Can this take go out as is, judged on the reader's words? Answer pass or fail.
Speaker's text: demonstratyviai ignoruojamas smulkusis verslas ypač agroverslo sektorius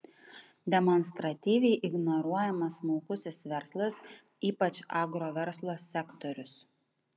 pass